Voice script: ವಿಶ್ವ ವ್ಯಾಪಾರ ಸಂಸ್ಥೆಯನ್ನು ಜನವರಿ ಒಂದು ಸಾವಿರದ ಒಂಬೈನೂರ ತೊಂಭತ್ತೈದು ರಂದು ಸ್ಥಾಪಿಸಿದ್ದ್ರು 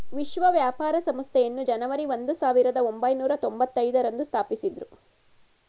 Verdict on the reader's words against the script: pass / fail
pass